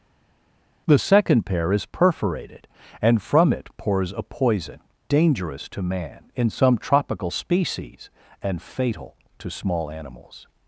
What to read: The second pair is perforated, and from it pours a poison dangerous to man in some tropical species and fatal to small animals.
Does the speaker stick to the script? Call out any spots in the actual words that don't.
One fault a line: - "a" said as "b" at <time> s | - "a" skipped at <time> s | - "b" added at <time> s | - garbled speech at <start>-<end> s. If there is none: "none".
none